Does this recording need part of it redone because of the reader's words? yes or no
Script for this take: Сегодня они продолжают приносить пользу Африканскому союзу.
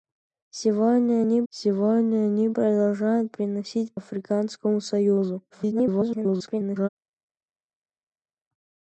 yes